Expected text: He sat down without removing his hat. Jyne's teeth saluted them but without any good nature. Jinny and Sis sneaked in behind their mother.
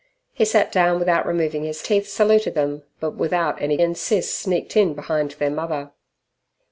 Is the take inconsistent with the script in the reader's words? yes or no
yes